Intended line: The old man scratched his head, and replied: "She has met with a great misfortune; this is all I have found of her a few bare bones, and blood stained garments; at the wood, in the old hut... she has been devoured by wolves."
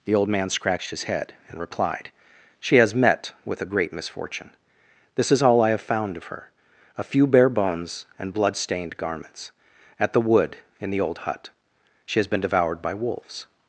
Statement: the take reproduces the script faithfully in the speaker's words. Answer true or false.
true